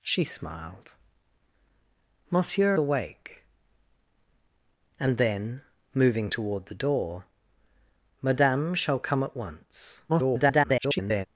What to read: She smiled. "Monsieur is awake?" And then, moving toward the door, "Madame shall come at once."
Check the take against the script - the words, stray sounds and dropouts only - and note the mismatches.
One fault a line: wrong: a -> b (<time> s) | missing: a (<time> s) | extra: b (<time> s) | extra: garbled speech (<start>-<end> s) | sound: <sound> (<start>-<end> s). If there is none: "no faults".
missing: is (2.8 s)
extra: garbled speech (10.1-11.3 s)